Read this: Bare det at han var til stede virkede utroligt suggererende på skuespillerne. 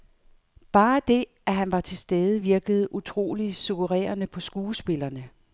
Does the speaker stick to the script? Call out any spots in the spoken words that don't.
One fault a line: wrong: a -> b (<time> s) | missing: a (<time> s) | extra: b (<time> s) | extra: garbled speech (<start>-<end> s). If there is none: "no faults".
no faults